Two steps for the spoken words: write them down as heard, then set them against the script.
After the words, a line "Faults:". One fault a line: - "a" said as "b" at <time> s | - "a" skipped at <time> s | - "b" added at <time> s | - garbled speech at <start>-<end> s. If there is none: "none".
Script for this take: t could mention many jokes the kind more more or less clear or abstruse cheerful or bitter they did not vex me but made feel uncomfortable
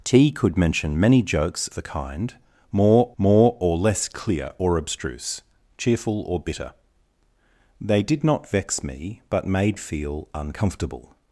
t could mention many jokes the kind more more or less clear or abstruse cheerful or bitter they did not vex me but made feel uncomfortable
Faults:
none